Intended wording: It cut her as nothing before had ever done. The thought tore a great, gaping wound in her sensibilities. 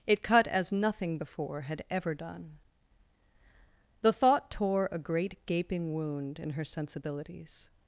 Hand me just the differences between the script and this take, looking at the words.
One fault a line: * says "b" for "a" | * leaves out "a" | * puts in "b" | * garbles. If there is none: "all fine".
* leaves out "her"